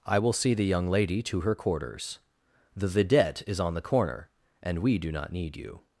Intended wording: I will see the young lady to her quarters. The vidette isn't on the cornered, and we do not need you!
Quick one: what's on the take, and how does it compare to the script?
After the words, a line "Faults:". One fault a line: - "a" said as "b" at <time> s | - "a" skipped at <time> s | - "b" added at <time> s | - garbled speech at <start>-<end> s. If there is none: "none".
I will see the young lady to her quarters. The vidette is on the corner, and we do not need you!
Faults:
- "isn't" said as "is" at 3.5 s
- "cornered" said as "corner" at 3.8 s